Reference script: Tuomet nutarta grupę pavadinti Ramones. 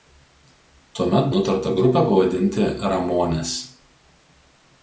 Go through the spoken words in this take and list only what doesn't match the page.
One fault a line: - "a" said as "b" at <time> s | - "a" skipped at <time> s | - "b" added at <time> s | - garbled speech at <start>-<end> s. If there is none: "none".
none